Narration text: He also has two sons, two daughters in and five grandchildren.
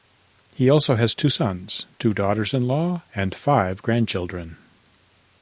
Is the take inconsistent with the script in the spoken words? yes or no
yes